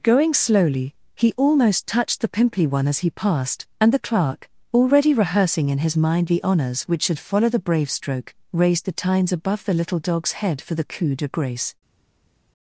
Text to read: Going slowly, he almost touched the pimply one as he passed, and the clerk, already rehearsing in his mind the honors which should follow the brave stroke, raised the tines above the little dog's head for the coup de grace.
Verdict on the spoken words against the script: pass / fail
pass